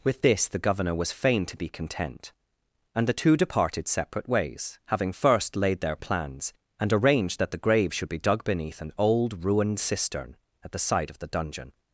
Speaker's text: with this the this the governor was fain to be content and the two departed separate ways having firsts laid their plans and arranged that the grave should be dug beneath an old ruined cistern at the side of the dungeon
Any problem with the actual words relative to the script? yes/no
yes